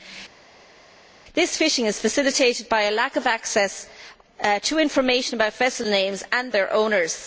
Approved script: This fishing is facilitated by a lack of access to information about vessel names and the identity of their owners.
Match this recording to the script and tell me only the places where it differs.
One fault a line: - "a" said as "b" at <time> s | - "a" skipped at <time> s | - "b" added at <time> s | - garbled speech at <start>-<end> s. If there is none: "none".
- "the identity of" skipped at 6.5 s